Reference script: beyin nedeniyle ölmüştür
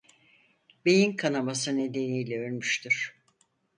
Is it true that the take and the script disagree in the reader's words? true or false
true